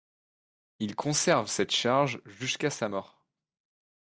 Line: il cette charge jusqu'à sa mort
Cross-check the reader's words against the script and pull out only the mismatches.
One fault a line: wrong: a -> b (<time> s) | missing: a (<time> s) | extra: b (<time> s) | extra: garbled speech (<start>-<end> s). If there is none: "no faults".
extra: conserve (0.9 s)